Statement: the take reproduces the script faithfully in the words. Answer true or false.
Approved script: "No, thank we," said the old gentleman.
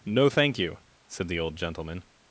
false